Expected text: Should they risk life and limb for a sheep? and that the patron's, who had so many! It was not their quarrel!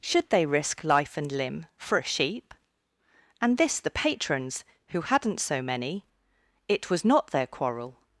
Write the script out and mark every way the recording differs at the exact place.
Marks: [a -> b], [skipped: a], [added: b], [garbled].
Should they risk life and limb for a sheep? and [that -> this] the patron's, who [had -> hadn't] so many! It was not their quarrel!